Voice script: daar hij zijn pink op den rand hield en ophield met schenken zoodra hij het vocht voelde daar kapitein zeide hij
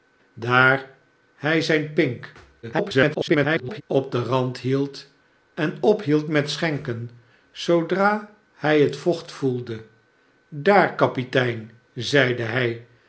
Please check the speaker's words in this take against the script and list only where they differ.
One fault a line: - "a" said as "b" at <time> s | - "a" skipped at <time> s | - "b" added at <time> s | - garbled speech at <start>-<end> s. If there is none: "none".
- garbled speech at 2.6-3.8 s